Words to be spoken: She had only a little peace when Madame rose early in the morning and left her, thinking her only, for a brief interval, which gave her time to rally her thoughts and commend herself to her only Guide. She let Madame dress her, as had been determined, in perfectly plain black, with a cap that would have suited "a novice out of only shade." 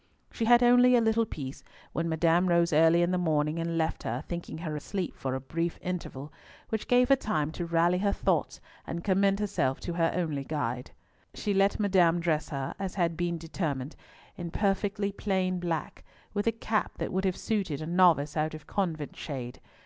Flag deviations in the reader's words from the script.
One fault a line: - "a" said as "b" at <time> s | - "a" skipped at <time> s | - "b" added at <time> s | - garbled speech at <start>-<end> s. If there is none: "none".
- "only" said as "asleep" at 4.7 s
- "only" said as "convent" at 18.7 s